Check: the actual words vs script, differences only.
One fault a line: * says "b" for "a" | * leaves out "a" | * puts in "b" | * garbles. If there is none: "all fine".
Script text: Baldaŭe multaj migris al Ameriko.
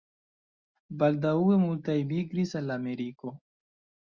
all fine